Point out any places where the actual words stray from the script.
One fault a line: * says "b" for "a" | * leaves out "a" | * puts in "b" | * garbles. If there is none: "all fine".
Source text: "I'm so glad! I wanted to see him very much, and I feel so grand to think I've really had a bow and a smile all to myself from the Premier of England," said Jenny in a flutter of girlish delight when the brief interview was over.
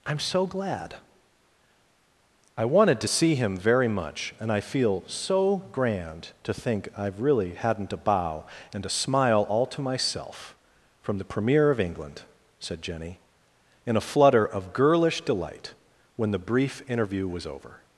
* says "hadn't" for "had"